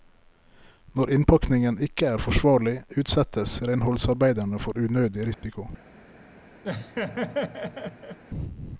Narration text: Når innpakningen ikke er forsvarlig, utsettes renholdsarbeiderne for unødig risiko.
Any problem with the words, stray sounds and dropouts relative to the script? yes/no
yes